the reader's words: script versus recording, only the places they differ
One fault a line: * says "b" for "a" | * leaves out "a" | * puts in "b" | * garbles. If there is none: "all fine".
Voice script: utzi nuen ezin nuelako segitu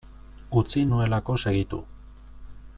* leaves out "nuen ezin"